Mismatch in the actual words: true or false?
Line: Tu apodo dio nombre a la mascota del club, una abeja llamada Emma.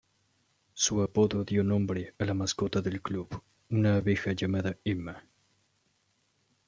true